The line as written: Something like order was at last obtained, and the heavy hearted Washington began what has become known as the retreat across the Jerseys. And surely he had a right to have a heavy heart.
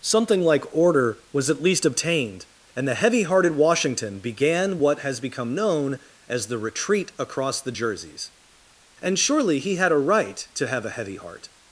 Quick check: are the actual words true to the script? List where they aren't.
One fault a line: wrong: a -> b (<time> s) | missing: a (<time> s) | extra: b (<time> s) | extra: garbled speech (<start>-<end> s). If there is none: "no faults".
wrong: last -> least (1.6 s)